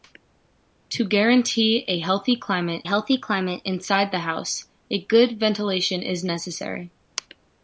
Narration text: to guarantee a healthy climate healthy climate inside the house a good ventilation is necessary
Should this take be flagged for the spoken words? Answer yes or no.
no